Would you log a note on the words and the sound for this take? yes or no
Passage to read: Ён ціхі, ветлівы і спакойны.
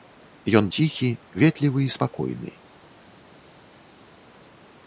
no